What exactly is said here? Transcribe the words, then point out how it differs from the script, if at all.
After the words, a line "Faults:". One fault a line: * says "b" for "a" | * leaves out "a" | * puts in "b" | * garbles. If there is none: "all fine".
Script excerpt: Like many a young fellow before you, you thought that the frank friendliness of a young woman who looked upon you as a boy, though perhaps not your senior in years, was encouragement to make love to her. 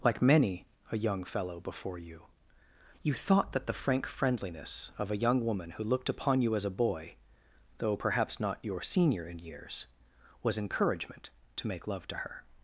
Like many a young fellow before you, you thought that the frank friendliness of a young woman who looked upon you as a boy, though perhaps not your senior in years, was encouragement to make love to her.
Faults:
all fine